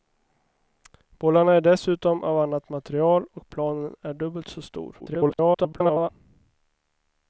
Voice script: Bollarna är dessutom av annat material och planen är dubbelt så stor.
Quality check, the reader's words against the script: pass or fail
fail